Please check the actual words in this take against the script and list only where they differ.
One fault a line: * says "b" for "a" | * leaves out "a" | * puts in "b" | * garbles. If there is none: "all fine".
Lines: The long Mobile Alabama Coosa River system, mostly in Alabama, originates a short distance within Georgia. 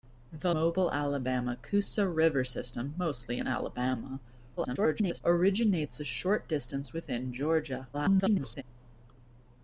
* leaves out "long"
* garbles
* garbles